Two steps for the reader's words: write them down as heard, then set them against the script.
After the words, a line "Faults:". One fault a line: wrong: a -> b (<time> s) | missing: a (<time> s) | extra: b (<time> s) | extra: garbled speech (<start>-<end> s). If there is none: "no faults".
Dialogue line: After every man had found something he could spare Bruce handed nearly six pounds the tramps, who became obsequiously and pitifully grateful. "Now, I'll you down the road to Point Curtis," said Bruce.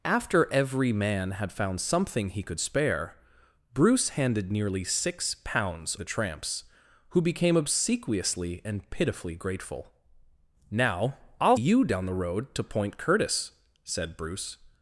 After every man had found something he could spare Bruce handed nearly six pounds the tramps, who became obsequiously and pitifully grateful. "Now, I'll you down the road to Point Curtis," said Bruce.
Faults:
no faults